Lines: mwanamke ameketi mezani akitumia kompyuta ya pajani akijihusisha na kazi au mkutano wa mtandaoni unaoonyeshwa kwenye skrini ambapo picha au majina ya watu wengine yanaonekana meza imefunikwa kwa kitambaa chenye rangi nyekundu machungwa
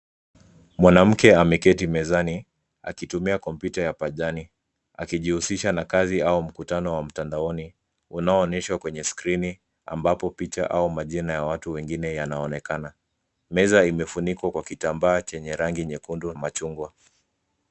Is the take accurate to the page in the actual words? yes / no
yes